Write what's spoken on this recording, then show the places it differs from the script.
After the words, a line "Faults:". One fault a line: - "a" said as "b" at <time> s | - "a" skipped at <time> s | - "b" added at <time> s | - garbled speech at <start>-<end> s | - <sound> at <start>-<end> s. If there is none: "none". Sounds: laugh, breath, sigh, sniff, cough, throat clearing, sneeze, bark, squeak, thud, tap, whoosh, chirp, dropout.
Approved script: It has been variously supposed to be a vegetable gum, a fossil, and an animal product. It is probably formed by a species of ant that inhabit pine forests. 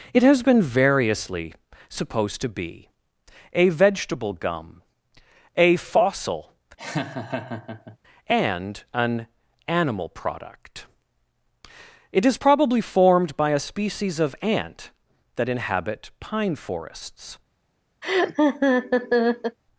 It has been variously supposed to be a vegetable gum, a fossil, and an animal product. It is probably formed by a species of ant that inhabit pine forests.
Faults:
- laugh at 6.8-8.0 s
- laugh at 18.0-19.6 s